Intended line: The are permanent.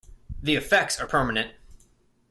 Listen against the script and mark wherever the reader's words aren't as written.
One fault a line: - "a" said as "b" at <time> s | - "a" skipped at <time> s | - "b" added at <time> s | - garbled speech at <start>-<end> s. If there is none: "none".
- "effects" added at 0.6 s